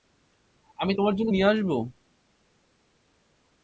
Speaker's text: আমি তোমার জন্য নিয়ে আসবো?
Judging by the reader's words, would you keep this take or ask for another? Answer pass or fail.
pass